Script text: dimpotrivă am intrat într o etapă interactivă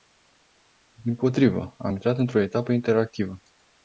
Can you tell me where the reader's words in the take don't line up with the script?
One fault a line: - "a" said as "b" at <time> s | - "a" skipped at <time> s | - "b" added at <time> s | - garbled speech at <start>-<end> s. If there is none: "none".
none